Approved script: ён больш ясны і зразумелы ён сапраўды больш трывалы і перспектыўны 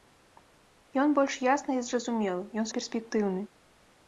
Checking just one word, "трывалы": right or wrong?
wrong